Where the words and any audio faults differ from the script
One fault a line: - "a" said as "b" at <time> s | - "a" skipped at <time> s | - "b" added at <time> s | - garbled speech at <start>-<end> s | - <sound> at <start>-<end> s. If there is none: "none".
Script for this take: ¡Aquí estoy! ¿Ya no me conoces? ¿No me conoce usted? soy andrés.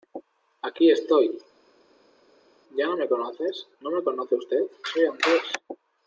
none